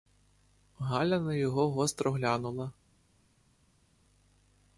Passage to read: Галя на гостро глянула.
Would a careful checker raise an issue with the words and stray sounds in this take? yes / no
yes